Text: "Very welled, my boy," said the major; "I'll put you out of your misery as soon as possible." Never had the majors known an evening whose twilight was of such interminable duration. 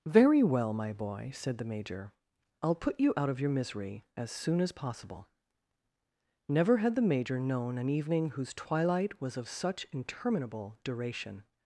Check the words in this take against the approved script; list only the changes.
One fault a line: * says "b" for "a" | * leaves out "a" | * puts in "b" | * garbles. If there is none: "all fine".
* says "well" for "welled"
* says "major" for "majors"